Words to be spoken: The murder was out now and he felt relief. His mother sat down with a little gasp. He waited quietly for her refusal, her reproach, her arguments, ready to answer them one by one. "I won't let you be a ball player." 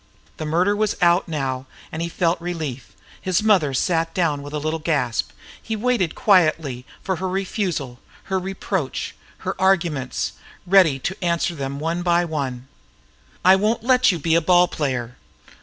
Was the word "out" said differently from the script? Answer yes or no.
no